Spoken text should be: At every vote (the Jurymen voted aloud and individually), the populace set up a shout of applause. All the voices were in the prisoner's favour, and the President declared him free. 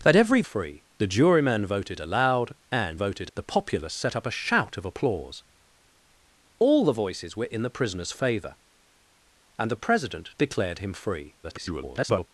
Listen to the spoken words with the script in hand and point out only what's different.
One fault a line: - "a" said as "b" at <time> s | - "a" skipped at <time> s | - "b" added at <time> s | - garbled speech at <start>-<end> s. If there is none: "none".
- "vote" said as "free" at 0.4 s
- "individually" said as "voted" at 2.9 s
- garbled speech at 11.4-12.3 s